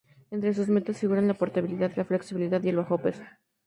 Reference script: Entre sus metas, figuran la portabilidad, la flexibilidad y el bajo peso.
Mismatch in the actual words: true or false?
false